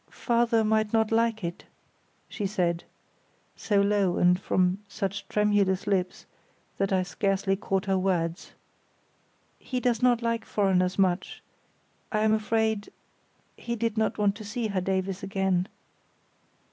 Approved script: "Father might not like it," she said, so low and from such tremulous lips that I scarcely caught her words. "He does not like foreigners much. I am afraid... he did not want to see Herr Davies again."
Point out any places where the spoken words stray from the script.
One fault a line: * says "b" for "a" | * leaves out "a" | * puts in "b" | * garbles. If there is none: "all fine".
all fine